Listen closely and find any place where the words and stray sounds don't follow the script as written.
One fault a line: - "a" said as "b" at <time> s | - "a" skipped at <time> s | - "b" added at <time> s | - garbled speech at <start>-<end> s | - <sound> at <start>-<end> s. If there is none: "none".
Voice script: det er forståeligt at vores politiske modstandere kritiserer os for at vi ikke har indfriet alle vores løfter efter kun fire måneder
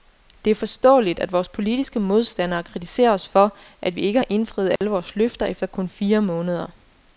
- dropout at 4.8-4.8 s